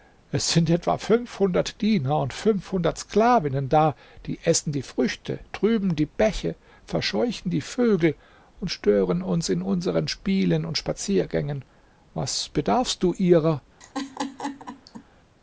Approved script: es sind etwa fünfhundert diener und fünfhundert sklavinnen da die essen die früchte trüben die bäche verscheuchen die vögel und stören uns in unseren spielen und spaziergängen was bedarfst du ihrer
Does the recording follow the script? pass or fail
pass